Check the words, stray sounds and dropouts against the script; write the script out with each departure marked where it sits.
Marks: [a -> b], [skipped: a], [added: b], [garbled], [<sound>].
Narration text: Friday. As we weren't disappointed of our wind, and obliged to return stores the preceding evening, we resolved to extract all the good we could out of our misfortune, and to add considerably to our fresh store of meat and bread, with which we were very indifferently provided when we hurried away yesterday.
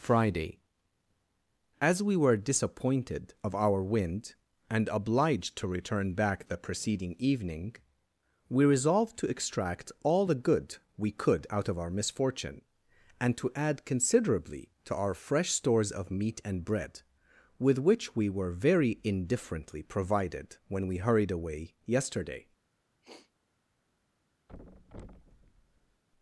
Friday. As we [weren't -> were] disappointed of our wind, and obliged to return [stores -> back] the preceding evening, we resolved to extract all the good we could out of our misfortune, and to add considerably to our fresh [store -> stores] of meat and bread, with which we were very indifferently provided when we hurried away yesterday. [sniff] [thud]